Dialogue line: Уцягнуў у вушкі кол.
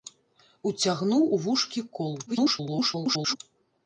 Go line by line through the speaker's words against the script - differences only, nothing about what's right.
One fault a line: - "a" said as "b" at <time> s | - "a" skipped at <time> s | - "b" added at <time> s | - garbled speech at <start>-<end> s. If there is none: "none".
- garbled speech at 2.3-3.4 s